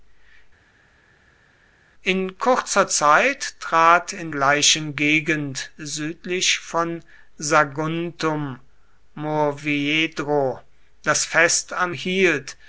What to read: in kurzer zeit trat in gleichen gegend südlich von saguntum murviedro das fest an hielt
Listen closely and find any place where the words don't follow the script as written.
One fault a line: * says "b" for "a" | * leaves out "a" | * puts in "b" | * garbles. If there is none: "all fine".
all fine